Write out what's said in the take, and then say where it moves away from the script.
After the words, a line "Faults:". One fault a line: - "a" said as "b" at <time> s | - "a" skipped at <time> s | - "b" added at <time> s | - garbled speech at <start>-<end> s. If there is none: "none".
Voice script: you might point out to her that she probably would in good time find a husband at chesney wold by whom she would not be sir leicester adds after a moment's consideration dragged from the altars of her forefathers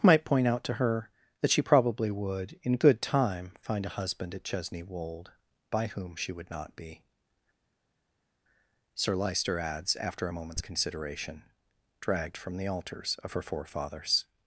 might point out to her that she probably would in good time find a husband at chesney wold by whom she would not be sir leicester adds after a moment's consideration dragged from the altars of her forefathers
Faults:
- "you" skipped at 0.0 s